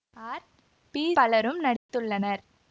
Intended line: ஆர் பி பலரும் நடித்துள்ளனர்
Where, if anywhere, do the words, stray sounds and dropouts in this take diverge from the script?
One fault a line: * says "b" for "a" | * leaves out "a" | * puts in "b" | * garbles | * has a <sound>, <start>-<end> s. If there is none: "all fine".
* has a dropout, 1.8-1.9 s